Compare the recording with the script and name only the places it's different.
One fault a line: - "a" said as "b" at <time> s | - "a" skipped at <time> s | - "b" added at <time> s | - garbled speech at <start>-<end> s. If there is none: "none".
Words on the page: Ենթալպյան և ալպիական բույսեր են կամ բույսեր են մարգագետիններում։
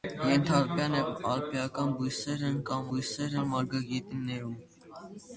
none